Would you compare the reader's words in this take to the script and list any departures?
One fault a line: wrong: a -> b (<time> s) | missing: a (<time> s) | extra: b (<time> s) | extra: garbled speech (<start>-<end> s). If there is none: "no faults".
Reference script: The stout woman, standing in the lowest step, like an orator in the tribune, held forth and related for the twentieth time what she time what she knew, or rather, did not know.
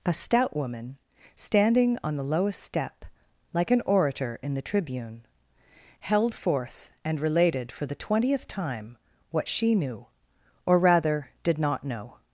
wrong: The -> A (0.0 s)
wrong: in -> on (2.0 s)
missing: time what she (9.7 s)